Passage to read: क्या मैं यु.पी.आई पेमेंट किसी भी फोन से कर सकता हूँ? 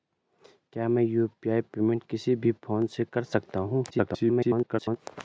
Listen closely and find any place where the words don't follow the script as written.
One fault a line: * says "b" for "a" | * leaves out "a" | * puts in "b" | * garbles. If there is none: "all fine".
* garbles